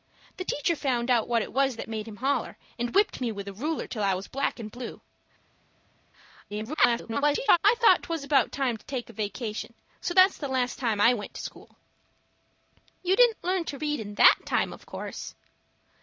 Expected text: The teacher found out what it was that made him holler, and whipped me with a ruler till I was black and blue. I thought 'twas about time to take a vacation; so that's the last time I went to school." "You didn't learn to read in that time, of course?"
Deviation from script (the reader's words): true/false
true